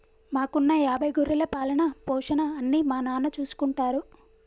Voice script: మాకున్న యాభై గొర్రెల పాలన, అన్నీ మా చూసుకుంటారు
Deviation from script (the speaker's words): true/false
true